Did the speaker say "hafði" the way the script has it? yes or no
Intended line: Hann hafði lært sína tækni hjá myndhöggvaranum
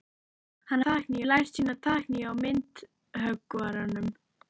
no